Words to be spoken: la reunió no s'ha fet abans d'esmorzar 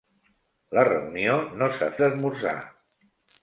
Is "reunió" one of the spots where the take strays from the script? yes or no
no